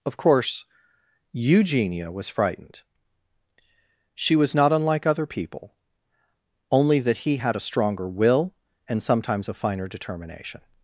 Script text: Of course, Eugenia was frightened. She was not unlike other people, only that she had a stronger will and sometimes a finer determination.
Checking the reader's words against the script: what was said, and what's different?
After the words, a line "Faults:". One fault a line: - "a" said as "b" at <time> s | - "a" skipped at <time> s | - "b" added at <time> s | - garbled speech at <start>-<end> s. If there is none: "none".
Of course, Eugenia was frightened. She was not unlike other people, only that he had a stronger will and sometimes a finer determination.
Faults:
- "she" said as "he" at 7.2 s